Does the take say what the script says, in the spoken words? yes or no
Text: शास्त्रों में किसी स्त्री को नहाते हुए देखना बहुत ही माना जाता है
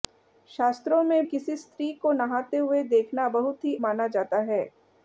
yes